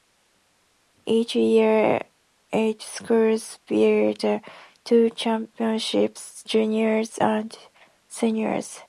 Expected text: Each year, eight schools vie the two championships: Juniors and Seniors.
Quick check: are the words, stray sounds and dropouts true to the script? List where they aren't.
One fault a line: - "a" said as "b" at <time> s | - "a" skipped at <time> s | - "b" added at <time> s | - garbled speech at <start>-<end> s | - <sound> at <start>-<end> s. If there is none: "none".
none